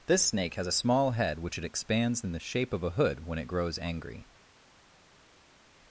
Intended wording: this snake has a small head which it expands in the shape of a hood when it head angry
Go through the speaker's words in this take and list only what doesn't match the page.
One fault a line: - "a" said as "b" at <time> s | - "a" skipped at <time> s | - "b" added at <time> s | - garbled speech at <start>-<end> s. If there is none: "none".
- "head" said as "grows" at 3.5 s